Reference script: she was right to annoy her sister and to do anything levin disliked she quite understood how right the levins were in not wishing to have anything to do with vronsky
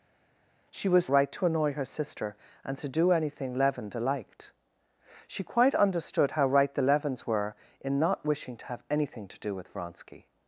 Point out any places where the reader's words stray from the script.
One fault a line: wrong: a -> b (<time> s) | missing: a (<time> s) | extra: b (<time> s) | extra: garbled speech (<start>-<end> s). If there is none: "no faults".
no faults